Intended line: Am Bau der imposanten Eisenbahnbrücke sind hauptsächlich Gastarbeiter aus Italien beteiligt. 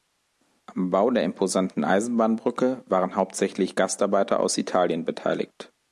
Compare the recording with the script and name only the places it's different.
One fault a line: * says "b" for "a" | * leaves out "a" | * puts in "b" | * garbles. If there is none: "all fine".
* says "waren" for "sind"